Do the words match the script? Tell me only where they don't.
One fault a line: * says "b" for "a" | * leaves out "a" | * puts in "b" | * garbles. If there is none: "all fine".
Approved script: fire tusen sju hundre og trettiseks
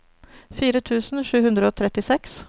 all fine